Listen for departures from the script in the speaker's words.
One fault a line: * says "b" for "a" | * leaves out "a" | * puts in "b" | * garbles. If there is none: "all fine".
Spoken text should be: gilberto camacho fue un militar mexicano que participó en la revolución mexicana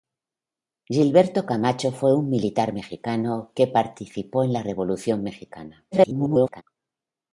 * garbles